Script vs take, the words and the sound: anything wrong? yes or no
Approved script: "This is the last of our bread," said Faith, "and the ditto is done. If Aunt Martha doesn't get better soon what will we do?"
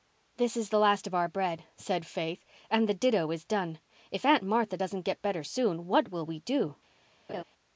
yes